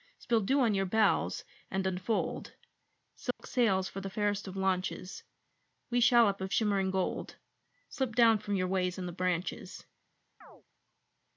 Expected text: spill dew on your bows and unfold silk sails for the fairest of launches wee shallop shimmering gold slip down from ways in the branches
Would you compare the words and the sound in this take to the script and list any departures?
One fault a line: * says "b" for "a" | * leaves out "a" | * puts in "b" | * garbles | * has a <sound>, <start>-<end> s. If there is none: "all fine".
* has a dropout, 3.3-3.4 s
* puts in "of"
* puts in "your"
* has a chirp, 10.4-10.6 s